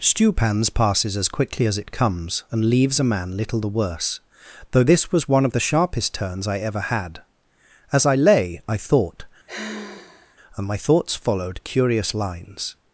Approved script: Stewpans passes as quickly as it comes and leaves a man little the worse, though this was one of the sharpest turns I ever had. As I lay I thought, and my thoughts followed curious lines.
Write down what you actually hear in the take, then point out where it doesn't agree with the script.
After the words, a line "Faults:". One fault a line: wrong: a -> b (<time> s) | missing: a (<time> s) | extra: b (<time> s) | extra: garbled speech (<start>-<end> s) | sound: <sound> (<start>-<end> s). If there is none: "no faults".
Stewpans passes as quickly as it comes and leaves a man little the worse, though this was one of the sharpest turns I ever had. As I lay I thought, and my thoughts followed curious lines.
Faults:
sound: sigh (9.5-10.4 s)